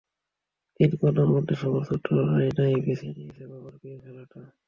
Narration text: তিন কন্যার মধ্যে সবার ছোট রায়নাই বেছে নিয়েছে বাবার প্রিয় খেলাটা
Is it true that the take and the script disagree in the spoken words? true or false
false